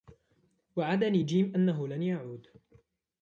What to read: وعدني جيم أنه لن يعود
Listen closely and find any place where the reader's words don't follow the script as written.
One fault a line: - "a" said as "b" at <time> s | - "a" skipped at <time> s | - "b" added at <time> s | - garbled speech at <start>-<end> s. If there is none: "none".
none